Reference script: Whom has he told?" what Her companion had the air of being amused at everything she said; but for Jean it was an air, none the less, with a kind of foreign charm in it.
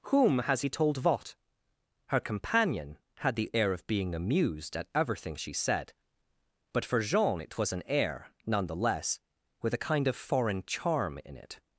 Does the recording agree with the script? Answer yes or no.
yes